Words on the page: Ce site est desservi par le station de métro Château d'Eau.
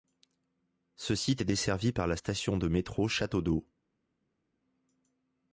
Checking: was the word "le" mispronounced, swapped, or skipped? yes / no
yes